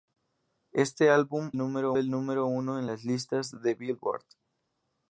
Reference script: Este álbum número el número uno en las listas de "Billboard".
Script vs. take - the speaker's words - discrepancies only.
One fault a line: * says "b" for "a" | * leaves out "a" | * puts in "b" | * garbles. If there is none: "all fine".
all fine